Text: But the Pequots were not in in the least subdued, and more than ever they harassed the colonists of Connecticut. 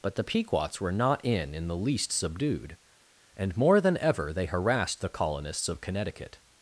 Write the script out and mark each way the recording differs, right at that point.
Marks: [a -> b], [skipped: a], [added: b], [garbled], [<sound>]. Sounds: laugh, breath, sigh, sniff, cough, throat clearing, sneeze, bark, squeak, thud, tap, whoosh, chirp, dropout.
But the Pequots were not in in the least subdued, and more than ever they harassed the colonists of Connecticut.